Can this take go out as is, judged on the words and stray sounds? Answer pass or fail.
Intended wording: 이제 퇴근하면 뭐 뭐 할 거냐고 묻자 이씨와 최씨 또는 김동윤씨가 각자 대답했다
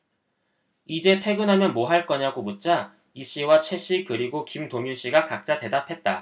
fail